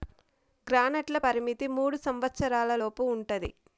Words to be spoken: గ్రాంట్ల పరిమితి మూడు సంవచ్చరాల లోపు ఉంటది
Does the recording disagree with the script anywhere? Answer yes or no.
no